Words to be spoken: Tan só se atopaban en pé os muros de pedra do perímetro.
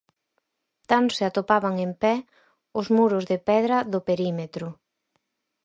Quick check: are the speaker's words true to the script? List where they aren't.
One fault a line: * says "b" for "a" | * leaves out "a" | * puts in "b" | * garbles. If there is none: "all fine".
* leaves out "só"